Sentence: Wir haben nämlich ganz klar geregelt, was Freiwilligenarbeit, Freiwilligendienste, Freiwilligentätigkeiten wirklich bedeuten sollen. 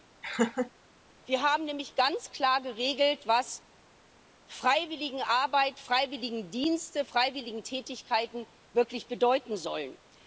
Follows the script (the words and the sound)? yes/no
no